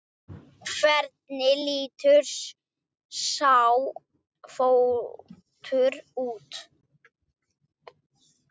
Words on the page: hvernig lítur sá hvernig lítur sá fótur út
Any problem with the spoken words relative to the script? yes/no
yes